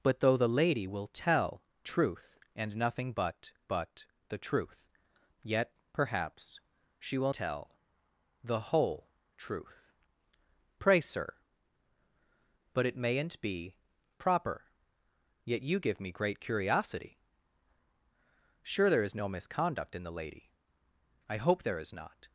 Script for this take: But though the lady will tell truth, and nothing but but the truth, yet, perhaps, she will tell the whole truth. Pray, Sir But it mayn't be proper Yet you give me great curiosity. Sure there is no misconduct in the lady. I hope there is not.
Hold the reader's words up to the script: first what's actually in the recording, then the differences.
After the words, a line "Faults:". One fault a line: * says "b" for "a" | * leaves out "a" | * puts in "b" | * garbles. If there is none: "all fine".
But though the lady will tell truth, and nothing but but the truth, yet, perhaps, she will tell the whole truth. Pray, Sir But it mayn't be proper Yet you give me great curiosity. Sure there is no misconduct in the lady. I hope there is not.
Faults:
all fine